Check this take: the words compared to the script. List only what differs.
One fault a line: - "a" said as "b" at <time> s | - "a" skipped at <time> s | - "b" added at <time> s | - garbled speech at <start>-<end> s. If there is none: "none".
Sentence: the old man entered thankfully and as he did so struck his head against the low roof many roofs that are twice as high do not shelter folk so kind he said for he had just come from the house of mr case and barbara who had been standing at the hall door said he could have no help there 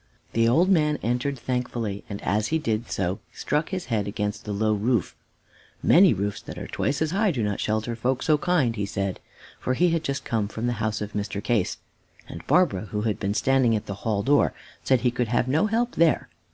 none